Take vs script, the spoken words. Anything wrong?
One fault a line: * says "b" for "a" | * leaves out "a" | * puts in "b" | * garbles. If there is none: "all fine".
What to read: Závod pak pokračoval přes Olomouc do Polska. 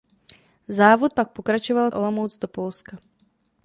* leaves out "přes"